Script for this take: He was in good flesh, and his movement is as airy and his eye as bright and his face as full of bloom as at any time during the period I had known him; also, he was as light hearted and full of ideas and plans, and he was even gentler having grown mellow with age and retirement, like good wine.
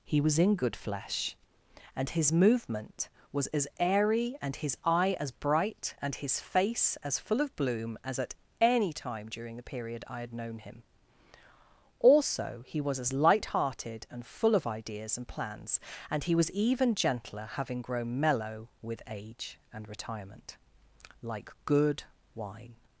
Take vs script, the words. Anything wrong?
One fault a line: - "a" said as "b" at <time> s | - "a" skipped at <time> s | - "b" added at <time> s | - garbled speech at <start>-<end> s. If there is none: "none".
- "is" said as "was" at 3.3 s